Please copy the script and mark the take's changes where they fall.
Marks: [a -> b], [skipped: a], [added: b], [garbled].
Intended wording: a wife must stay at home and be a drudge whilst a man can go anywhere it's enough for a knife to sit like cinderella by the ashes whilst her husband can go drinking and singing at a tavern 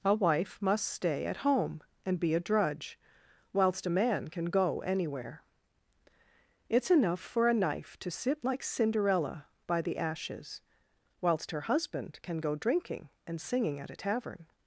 a wife must stay at home and be a drudge whilst a man can go anywhere it's enough for a knife to sit like cinderella by the ashes whilst her husband can go drinking and singing at a tavern